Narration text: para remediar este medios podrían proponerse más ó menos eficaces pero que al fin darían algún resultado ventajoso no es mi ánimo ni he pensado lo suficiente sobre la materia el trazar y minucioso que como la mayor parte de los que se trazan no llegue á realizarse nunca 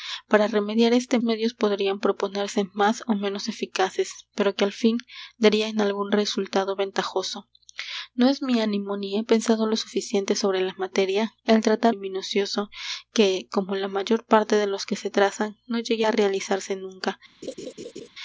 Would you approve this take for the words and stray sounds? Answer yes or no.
no